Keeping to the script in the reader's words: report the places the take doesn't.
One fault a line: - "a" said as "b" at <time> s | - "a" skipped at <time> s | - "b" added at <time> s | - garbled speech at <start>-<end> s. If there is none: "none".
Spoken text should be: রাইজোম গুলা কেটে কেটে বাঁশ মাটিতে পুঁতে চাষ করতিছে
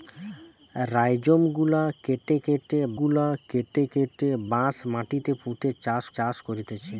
- "গুলা কেটে কেটে" added at 3.0 s
- "চাষ" added at 6.2 s